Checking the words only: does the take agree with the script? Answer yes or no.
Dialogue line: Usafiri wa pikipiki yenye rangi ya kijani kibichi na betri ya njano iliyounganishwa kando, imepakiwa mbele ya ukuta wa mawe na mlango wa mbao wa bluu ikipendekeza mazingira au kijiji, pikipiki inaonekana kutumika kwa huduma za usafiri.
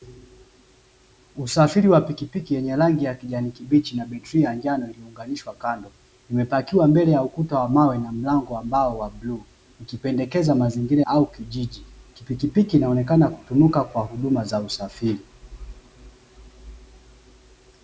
yes